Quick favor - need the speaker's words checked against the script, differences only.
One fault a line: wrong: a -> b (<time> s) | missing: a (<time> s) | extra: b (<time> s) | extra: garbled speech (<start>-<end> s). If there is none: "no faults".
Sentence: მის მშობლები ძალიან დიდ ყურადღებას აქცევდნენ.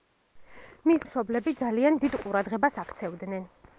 no faults